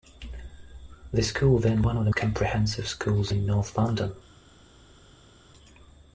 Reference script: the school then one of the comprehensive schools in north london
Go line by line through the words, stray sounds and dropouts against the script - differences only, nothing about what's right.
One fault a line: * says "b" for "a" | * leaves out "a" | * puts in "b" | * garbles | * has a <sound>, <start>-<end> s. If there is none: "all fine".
all fine